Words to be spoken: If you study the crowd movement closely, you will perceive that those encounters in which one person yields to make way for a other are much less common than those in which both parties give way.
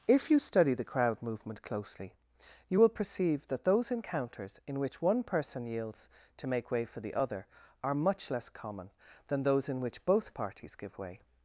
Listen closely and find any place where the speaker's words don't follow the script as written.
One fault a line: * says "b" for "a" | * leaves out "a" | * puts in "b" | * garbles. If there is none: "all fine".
* says "the" for "a"